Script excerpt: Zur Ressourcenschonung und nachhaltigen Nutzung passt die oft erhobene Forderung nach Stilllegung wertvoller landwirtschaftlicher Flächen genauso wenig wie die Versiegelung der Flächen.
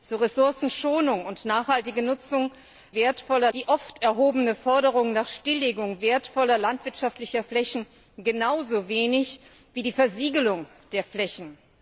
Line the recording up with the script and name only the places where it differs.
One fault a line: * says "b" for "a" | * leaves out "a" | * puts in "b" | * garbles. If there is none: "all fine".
* says "wertvoller" for "passt"